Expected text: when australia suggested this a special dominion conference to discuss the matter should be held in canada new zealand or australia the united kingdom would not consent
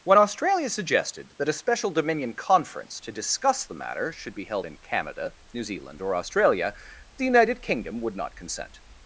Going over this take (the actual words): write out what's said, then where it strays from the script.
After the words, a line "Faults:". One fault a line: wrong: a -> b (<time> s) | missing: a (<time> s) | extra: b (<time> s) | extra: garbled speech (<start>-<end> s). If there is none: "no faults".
when australia suggested that a special dominion conference to discuss the matter should be held in canada new zealand or australia the united kingdom would not consent
Faults:
wrong: this -> that (1.4 s)